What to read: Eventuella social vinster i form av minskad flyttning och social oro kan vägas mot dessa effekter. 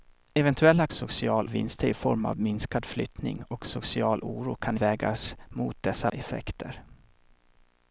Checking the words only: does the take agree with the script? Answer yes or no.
yes